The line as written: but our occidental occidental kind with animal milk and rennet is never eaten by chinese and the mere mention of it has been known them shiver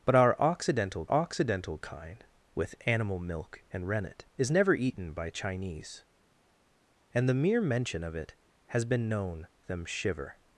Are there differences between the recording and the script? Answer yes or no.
no